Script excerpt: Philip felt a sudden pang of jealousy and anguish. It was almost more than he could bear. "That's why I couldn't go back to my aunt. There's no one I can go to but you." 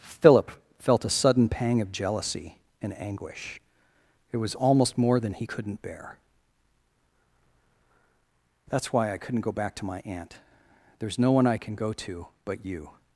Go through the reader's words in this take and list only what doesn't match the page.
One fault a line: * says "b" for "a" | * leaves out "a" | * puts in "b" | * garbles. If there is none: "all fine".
* says "couldn't" for "could"